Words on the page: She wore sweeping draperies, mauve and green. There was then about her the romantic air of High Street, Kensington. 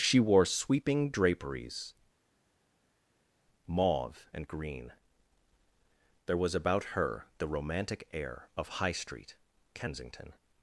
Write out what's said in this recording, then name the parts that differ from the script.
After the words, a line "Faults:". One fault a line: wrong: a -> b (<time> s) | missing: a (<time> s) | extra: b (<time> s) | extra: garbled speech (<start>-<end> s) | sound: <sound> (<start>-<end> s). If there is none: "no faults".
She wore sweeping draperies, mauve and green. There was about her the romantic air of High Street, Kensington.
Faults:
missing: then (6.5 s)